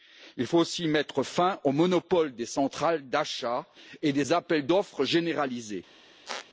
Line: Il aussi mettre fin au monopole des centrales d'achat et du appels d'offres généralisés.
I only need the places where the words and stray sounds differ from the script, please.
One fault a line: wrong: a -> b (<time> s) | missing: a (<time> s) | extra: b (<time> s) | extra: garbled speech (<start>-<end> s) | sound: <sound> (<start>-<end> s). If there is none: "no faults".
extra: faut (0.5 s)
wrong: du -> des (4.1 s)
sound: squeak (6.3-6.5 s)